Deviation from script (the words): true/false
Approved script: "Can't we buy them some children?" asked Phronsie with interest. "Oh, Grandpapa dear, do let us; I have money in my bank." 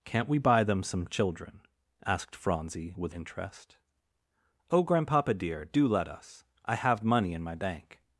false